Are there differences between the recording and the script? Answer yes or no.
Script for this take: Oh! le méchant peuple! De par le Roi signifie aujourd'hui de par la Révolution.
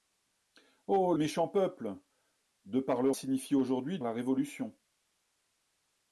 yes